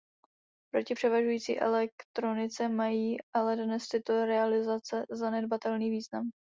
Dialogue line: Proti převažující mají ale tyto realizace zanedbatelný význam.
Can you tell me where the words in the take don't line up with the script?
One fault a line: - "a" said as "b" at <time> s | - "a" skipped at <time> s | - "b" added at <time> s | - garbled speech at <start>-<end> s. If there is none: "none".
- "elektronice" added at 1.6 s
- "dnes" added at 3.6 s